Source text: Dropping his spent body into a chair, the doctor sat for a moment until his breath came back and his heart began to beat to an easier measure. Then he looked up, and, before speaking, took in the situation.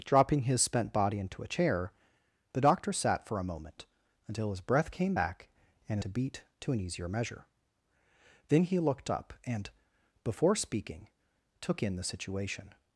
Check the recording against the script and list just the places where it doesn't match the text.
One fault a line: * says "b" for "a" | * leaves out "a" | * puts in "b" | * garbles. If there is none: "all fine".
* leaves out "his heart began"